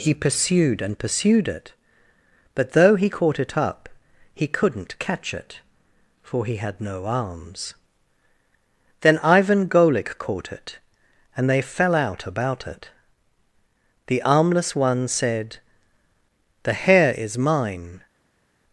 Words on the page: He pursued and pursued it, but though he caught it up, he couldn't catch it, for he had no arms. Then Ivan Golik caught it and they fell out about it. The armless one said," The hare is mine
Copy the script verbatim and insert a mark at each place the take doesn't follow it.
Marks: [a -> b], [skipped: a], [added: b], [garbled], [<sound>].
He pursued and pursued it, but though he caught it up, he couldn't catch it, for he had no arms. Then Ivan Golik caught it and they fell out about it. The armless one said," The hare is mine